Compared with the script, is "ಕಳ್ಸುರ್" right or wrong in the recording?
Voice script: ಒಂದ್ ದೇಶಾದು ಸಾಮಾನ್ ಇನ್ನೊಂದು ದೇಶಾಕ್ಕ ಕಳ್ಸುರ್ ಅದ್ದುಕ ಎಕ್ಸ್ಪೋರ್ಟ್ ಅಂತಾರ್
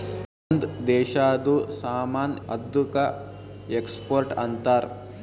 wrong